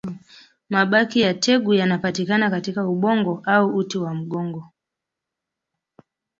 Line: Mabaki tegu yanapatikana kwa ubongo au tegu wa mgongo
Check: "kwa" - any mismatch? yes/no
yes